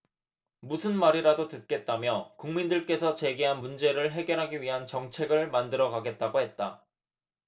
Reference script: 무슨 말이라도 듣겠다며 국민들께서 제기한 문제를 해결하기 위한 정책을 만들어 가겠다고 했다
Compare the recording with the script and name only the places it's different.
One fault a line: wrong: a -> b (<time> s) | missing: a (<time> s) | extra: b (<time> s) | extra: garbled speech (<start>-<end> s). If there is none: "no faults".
no faults